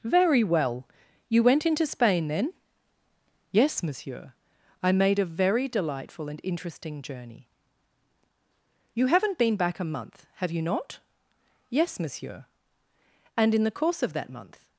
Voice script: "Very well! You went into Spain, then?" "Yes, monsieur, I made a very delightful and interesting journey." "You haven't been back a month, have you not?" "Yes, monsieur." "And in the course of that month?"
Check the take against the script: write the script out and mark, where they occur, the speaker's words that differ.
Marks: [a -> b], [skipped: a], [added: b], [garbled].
"Very well! You went into Spain, then?" "Yes, monsieur, I made a very delightful and interesting journey." "You haven't been back a month, have you not?" "Yes, monsieur." "And in the course of that month?"